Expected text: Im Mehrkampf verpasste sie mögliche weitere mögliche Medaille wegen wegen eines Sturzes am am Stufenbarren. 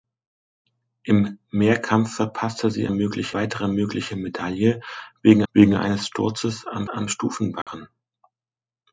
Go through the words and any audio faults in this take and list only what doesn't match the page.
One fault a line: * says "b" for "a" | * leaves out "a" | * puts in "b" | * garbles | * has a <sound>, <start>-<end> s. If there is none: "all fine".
* has a dropout, 7.6-7.7 s